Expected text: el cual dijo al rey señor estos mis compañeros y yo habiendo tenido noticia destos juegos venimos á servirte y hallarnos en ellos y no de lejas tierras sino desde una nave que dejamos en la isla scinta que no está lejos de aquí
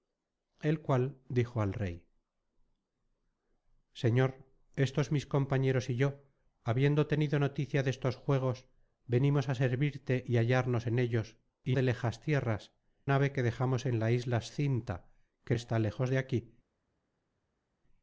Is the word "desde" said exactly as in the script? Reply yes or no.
no